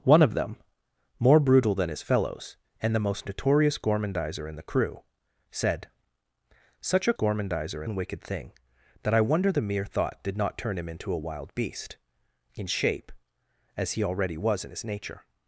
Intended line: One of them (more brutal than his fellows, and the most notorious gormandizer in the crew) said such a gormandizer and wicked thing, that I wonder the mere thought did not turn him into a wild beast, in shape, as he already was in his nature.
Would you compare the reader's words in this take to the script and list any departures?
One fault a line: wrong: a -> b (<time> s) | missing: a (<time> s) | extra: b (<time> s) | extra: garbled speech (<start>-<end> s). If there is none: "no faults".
no faults